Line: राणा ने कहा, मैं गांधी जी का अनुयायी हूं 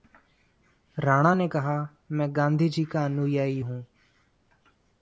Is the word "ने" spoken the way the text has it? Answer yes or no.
yes